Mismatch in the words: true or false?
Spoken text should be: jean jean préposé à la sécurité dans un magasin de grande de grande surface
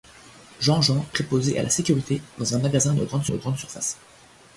false